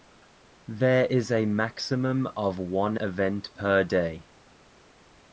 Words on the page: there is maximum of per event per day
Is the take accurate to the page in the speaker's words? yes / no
no